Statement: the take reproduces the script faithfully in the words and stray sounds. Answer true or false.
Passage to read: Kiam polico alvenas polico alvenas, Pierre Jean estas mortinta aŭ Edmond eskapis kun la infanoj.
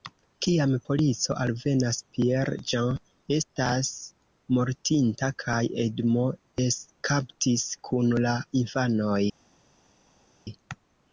false